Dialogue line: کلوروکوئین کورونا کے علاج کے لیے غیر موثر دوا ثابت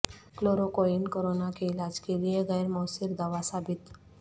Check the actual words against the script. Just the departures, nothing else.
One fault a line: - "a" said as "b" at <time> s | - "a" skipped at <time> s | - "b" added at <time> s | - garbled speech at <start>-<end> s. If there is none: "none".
none